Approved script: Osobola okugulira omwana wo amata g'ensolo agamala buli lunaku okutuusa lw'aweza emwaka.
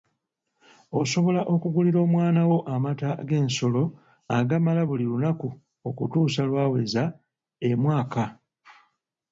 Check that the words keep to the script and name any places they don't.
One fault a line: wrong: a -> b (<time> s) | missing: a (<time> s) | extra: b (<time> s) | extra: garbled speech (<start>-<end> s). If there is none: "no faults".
no faults